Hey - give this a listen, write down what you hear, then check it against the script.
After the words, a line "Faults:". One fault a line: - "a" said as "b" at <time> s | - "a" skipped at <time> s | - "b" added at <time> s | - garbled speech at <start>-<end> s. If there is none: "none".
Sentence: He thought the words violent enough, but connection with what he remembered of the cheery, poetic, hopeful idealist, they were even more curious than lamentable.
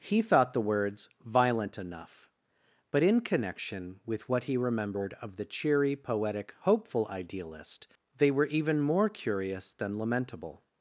He thought the words violent enough, but in connection with what he remembered of the cheery, poetic, hopeful idealist, they were even more curious than lamentable.
Faults:
- "in" added at 3.0 s